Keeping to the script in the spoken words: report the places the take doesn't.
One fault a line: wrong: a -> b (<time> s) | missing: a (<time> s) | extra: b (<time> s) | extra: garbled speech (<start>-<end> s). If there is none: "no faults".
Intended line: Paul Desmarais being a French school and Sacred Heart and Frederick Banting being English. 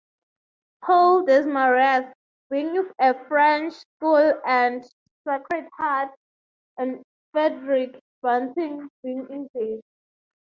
no faults